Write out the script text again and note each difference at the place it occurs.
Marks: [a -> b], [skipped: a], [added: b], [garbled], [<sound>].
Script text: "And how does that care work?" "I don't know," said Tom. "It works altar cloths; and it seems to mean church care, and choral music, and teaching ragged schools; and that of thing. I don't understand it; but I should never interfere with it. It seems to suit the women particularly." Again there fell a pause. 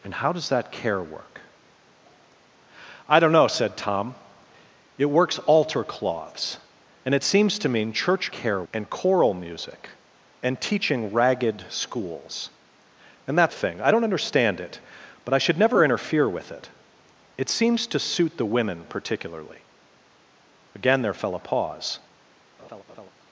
"And how does that care work?" "I don't know," said Tom. "It works altar cloths; and it seems to mean church care, and choral music, and teaching ragged schools; and that of thing. I don't understand it; but I should never interfere with it. It seems to suit the women particularly." Again there fell a pause. [laugh]